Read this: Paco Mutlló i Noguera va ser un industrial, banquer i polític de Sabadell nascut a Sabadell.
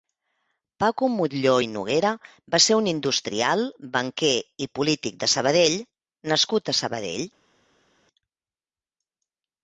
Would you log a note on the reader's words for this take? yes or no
no